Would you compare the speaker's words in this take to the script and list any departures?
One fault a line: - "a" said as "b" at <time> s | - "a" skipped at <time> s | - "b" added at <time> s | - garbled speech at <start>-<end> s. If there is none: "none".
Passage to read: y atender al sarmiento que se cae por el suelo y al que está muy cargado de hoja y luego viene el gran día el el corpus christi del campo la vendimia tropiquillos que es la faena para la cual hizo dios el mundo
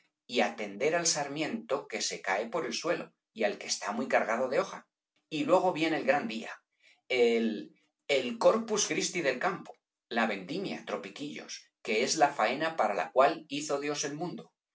none